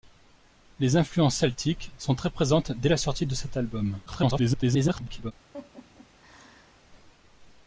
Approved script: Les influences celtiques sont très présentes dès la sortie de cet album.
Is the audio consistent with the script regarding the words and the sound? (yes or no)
no